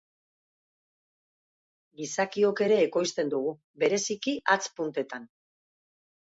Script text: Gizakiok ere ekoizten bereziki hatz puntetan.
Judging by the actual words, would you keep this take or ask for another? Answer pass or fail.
fail